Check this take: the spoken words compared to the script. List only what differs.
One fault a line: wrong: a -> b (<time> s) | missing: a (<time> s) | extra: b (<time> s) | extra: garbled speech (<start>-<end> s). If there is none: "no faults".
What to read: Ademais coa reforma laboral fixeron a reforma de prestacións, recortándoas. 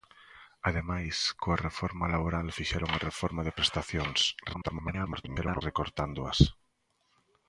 extra: garbled speech (4.5-5.6 s)